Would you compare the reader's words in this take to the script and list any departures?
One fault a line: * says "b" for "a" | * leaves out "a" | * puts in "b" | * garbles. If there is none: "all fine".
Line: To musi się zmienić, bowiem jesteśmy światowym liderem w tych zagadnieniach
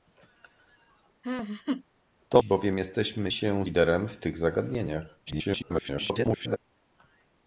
* leaves out "musi się zmienić"
* says "się" for "światowym"
* garbles